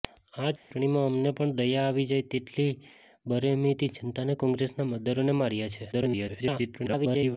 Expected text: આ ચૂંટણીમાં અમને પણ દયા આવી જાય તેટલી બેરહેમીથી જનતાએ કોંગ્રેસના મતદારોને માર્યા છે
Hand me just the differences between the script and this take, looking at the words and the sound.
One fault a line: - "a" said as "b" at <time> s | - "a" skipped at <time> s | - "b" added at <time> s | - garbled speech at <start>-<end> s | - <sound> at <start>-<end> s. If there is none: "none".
- dropout at 0.6-0.7 s
- garbled speech at 5.9-7.4 s